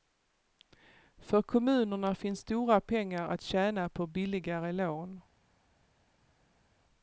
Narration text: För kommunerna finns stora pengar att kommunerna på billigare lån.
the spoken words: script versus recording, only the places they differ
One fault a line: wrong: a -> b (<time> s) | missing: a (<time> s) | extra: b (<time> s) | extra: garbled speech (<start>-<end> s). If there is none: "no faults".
wrong: kommunerna -> tjäna (3.4 s)